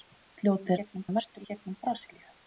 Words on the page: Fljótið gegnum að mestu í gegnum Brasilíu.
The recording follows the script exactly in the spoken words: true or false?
true